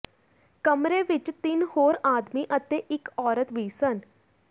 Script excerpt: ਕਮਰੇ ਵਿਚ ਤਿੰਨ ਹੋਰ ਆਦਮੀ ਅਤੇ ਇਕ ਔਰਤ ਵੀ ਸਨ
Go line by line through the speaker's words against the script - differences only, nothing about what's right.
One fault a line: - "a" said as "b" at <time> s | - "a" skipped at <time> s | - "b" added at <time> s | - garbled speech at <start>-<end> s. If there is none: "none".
none